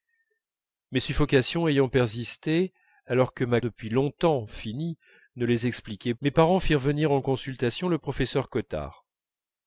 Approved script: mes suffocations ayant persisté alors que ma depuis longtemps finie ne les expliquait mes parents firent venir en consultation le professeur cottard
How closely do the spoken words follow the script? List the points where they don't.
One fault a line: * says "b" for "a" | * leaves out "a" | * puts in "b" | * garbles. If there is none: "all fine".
all fine